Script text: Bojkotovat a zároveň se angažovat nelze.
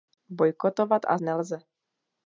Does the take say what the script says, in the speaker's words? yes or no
no